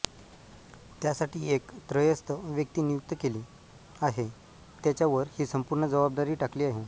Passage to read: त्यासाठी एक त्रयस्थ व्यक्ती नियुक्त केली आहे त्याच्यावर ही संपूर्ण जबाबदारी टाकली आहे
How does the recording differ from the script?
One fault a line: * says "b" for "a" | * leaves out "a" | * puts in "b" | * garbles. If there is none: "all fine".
all fine